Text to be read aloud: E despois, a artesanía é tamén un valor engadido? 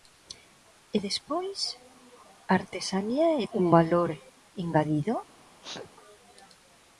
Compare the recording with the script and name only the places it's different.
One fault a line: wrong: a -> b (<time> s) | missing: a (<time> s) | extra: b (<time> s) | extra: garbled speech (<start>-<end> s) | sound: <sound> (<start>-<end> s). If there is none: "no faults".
missing: tamén (3.5 s)
sound: sneeze (5.6-5.9 s)